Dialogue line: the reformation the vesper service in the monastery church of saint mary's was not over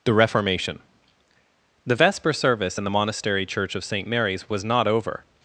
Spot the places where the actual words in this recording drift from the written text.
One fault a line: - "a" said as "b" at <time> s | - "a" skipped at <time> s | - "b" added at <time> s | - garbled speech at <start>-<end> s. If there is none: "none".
none